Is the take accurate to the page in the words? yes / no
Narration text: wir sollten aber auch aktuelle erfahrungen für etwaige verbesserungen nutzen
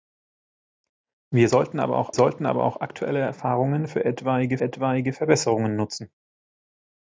no